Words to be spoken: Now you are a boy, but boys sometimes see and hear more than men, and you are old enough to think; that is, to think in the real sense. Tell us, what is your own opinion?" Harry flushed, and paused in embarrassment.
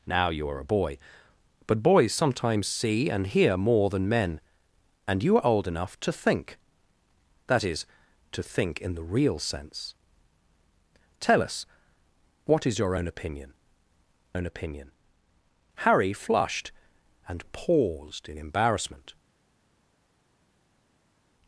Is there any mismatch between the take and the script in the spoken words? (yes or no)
yes